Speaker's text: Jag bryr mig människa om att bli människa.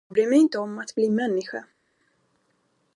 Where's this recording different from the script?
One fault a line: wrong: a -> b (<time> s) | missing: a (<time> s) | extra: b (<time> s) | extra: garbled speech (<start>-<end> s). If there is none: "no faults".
wrong: människa -> inte (0.4 s)